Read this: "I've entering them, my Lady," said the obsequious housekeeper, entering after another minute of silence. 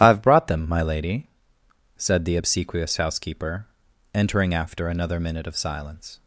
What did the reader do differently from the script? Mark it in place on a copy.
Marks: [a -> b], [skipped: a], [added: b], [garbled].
"I've [entering -> brought] them, my Lady," said the obsequious housekeeper, entering after another minute of silence.